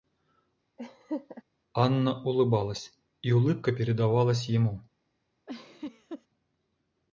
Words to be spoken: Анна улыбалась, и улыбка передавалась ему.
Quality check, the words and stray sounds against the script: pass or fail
fail